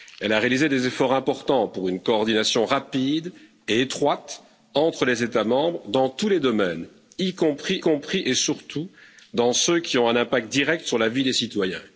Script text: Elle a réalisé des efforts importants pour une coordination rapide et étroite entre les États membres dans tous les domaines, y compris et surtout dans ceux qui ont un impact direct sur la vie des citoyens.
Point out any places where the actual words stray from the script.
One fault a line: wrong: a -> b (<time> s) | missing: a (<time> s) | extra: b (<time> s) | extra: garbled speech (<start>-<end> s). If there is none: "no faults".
extra: compris (7.8 s)